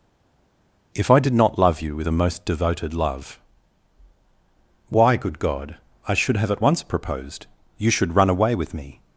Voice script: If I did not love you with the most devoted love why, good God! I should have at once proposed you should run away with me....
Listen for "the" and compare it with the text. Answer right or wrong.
wrong